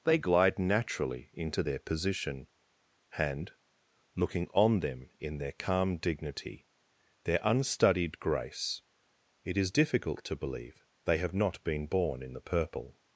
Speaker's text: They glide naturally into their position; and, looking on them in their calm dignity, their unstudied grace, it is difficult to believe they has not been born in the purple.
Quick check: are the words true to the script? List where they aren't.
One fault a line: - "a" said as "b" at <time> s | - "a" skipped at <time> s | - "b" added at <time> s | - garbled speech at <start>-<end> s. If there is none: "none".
- "has" said as "have" at 11.2 s